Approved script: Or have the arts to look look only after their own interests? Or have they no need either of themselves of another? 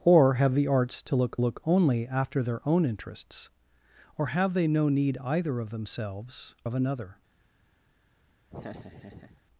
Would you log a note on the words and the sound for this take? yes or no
yes